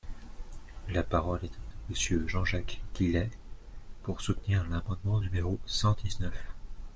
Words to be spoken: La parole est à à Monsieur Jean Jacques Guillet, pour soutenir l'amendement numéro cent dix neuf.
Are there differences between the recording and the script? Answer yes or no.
no